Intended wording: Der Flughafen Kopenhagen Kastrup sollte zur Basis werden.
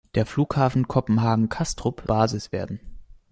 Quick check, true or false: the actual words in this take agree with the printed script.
false